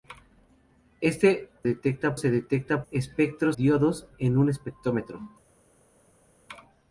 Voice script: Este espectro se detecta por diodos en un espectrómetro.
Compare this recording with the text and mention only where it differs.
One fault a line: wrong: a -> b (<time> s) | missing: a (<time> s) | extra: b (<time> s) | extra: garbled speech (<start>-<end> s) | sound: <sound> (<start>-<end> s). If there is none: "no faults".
wrong: espectro -> detecta (1.6 s)
wrong: por -> espectro (2.9 s)